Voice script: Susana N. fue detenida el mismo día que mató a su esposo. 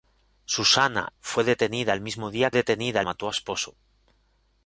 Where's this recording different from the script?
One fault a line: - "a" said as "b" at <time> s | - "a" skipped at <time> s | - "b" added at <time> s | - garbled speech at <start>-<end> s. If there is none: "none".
- "N" skipped at 1.1 s
- "que" said as "detenida" at 2.5 s
- "su" skipped at 3.3 s